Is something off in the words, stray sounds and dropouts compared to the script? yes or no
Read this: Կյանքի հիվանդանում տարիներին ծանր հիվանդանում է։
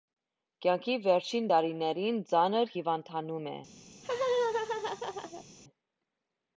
yes